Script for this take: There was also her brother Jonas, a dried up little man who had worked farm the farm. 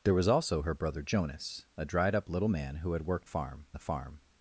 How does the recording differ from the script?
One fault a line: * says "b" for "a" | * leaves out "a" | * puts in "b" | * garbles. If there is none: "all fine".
all fine